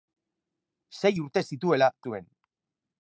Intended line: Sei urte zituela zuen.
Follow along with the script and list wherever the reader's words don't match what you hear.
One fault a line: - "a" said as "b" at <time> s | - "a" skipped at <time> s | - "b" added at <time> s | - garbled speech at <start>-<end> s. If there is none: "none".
none